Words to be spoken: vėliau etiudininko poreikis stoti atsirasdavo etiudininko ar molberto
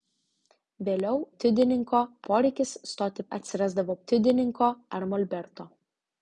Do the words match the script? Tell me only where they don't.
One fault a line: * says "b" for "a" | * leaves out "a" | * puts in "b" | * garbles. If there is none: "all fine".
all fine